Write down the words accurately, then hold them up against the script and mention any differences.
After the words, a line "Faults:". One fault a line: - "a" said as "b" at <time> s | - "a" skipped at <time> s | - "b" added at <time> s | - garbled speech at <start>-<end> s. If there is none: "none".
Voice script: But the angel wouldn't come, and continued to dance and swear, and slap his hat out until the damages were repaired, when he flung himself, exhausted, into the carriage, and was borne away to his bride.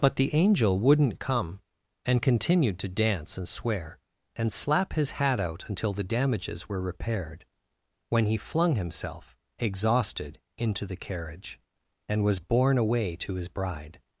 But the angel wouldn't come, and continued to dance and swear, and slap his hat out until the damages were repaired, when he flung himself, exhausted, into the carriage, and was borne away to his bride.
Faults:
none